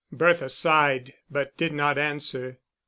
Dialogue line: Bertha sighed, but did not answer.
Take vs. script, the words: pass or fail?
pass